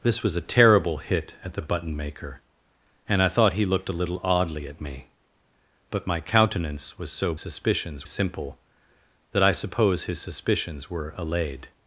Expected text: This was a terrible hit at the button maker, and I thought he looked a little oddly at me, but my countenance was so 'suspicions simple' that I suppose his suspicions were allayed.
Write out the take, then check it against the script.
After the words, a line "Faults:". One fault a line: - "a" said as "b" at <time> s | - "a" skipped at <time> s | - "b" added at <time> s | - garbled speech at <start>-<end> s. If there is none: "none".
This was a terrible hit at the button maker, and I thought he looked a little oddly at me, but my countenance was so 'suspicions simple' that I suppose his suspicions were allayed.
Faults:
none